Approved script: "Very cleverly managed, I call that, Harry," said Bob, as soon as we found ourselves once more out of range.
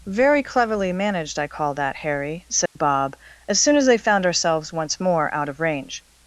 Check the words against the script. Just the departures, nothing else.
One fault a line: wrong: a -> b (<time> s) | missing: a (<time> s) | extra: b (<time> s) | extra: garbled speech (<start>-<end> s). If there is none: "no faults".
wrong: we -> they (3.9 s)